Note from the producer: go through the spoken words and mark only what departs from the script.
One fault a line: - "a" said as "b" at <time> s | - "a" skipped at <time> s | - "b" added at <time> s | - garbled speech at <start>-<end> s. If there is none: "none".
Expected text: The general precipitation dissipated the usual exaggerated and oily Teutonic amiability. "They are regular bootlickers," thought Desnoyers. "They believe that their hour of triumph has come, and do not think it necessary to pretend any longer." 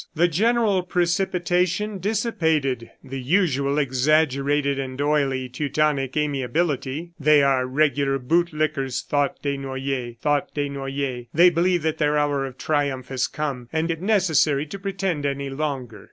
- "thought Desnoyers" added at 10.2 s
- "do not think" skipped at 13.9 s